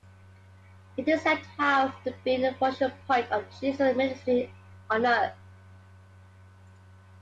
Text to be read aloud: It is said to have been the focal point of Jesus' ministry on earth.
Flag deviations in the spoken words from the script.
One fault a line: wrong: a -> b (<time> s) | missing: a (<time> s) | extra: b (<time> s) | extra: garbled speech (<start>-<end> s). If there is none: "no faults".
no faults